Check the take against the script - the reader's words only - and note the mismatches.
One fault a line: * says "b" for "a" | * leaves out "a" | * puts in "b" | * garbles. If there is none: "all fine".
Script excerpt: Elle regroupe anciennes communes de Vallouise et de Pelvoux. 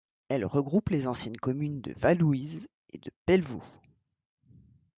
* puts in "les"